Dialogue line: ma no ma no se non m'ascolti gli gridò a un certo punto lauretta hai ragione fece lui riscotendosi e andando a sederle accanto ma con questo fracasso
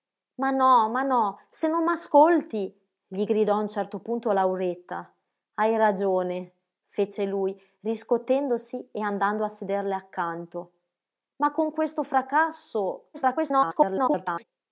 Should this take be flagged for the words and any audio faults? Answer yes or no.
yes